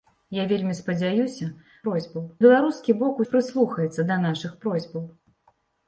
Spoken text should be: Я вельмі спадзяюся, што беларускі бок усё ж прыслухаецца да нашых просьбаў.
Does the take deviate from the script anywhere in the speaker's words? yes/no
yes